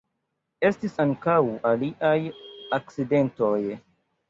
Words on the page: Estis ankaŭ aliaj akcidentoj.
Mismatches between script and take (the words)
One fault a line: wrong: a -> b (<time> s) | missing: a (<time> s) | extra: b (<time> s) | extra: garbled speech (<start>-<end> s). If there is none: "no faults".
no faults